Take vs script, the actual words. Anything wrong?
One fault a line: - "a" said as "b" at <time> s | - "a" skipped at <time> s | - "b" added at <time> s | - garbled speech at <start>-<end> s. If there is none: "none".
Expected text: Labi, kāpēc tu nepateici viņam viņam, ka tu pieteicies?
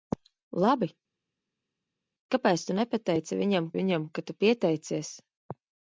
none